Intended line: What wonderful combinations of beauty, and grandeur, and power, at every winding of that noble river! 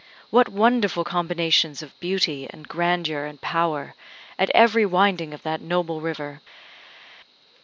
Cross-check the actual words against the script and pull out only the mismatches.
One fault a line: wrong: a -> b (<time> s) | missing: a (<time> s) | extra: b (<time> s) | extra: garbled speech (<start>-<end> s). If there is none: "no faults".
no faults